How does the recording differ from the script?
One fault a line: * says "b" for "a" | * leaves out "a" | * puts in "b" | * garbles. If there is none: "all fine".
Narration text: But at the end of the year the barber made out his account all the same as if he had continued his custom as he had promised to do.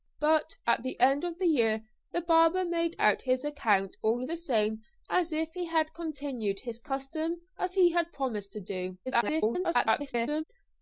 * garbles